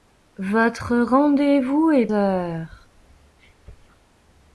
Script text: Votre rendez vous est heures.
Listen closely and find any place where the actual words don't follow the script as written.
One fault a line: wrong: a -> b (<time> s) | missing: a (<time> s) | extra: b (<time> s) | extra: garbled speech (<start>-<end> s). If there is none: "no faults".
no faults